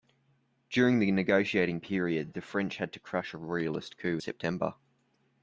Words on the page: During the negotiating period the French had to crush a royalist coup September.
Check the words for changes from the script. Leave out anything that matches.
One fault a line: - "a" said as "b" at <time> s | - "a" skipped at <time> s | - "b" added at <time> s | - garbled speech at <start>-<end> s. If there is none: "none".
none